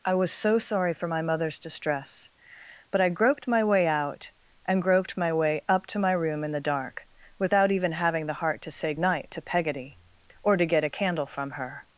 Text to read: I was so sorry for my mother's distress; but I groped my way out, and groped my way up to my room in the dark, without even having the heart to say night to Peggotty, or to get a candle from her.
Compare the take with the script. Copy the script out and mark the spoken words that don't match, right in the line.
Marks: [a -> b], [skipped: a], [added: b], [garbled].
I was so sorry for my mother's distress; but I groped my way out, and groped my way up to my room in the dark, without even having the heart to say night to Peggotty, or to get a candle from her.